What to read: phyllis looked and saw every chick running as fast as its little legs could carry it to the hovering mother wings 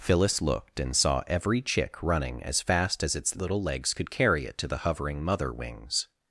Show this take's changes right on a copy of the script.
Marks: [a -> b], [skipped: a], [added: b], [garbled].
phyllis looked and saw every chick running as fast as its little legs could carry it to the hovering mother wings